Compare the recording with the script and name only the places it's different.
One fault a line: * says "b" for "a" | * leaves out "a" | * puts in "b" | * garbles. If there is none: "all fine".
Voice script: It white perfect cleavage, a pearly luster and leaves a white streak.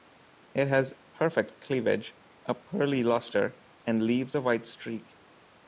* says "has" for "white"